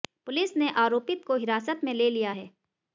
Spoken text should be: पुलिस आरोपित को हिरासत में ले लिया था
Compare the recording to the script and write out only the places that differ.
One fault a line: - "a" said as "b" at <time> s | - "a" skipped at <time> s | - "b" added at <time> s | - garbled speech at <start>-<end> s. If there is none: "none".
- "ने" added at 0.6 s
- "था" said as "है" at 2.3 s